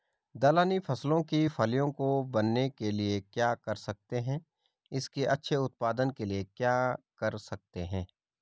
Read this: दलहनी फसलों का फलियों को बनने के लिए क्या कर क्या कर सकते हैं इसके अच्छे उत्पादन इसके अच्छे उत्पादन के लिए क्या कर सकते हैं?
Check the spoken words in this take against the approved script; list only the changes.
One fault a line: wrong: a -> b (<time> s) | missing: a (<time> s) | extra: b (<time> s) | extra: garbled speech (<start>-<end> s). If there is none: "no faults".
wrong: का -> की (1.2 s)
missing: क्या कर (3.7 s)
missing: इसके अच्छे उत्पादन (6.1 s)